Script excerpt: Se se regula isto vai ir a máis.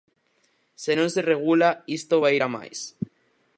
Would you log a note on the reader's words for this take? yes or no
yes